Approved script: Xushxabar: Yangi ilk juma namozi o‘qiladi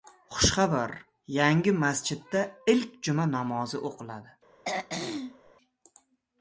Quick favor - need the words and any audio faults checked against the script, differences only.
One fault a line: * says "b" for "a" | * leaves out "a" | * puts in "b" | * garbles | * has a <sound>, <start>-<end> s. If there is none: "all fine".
* puts in "masjidda"
* has a throat clearing, 4.6-5.5 s